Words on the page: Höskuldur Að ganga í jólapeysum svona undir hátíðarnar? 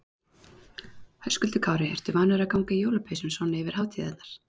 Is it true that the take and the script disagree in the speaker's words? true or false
true